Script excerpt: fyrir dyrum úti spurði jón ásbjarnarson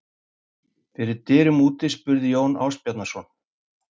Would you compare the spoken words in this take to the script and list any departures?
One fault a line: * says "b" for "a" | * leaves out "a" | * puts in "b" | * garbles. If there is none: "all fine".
all fine